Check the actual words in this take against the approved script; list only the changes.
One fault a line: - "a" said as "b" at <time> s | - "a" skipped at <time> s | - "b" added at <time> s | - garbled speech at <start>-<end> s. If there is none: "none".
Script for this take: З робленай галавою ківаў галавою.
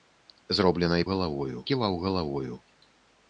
none